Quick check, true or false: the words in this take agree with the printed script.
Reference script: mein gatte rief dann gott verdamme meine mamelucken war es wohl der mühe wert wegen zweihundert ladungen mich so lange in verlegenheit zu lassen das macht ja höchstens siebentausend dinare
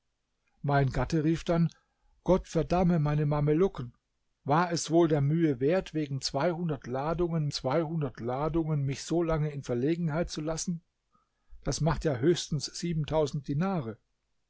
false